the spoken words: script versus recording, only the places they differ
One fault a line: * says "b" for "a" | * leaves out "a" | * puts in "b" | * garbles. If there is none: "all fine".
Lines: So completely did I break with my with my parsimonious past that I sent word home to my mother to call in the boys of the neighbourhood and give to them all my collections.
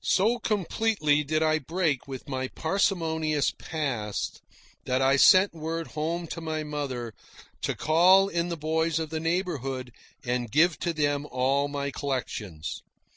* leaves out "with my"